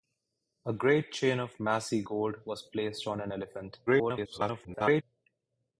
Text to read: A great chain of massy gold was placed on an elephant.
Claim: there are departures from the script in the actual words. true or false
true